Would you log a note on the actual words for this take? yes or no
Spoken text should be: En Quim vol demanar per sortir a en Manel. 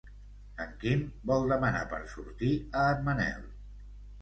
no